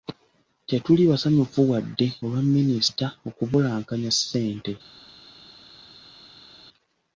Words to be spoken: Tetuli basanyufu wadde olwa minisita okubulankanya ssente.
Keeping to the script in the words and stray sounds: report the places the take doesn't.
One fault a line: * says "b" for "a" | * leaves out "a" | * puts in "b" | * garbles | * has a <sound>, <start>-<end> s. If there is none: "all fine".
all fine